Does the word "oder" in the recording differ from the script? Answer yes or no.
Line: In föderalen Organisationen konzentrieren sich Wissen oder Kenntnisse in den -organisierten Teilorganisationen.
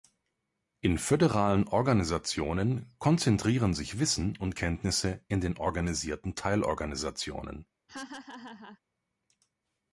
yes